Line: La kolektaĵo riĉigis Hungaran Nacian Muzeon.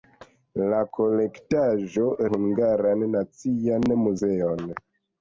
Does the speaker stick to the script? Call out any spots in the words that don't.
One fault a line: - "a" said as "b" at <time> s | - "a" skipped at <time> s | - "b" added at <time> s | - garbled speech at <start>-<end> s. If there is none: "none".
- "riĉigis" skipped at 2.1 s